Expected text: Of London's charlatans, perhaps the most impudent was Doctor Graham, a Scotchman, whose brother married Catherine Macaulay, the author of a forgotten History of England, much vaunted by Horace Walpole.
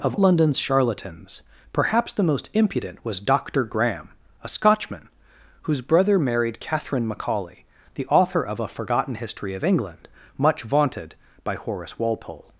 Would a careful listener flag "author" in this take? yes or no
no